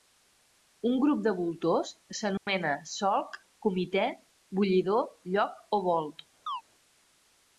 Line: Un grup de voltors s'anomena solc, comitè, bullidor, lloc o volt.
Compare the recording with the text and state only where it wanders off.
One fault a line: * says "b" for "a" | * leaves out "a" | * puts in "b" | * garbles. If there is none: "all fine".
all fine